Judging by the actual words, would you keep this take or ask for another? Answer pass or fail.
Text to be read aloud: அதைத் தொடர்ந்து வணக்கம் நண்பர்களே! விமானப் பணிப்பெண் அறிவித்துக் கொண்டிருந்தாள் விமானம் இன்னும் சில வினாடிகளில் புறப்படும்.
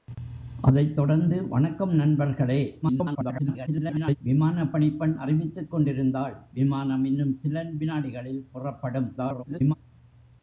fail